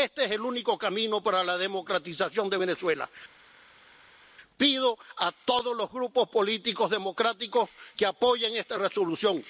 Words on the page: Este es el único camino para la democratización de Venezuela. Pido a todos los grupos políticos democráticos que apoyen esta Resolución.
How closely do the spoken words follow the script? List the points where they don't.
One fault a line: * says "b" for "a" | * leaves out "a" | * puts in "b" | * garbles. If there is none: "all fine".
all fine